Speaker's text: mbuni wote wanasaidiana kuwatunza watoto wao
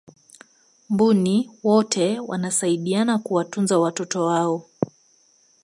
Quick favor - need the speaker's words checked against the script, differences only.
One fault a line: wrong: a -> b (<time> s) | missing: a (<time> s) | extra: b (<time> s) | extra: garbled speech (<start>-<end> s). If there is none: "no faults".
no faults